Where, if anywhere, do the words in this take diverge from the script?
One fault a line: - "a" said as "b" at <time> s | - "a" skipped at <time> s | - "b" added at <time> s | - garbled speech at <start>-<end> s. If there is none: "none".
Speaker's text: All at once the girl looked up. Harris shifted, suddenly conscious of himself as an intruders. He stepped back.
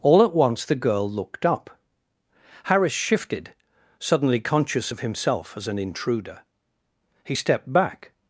- "intruders" said as "intruder" at 5.8 s